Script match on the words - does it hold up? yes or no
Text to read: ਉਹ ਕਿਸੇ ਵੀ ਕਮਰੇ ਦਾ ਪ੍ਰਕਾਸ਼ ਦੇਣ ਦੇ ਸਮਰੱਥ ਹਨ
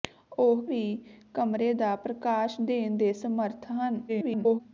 no